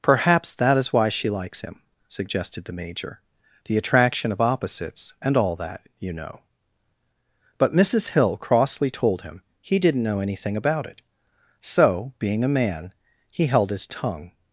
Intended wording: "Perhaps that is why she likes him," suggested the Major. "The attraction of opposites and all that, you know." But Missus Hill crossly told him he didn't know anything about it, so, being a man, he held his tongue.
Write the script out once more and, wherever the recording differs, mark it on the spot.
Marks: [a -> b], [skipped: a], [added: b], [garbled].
"Perhaps that is why she likes him," suggested the Major. "The attraction of opposites and all that, you know." But Missus Hill crossly told him he didn't know anything about it, so, being a man, he held his tongue.